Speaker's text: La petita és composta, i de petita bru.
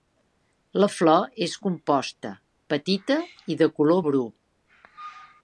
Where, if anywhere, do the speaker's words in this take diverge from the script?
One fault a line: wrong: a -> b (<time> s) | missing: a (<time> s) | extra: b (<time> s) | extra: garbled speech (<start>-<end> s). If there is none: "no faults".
wrong: petita -> flor (0.9 s)
extra: petita (2.8 s)
wrong: petita -> color (3.8 s)